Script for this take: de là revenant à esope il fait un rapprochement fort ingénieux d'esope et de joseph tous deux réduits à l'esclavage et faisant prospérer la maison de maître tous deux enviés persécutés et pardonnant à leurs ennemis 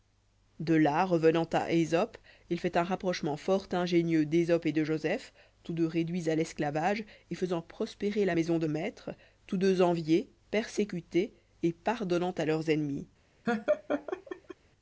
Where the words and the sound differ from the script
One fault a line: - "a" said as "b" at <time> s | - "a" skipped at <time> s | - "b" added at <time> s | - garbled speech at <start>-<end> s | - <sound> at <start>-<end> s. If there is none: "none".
- laugh at 13.5-14.6 s